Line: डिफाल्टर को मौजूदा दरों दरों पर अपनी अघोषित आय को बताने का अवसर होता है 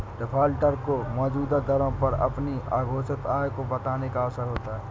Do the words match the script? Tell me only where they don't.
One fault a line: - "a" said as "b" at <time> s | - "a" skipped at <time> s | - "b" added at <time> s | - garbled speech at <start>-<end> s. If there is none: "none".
- "दरों" skipped at 1.9 s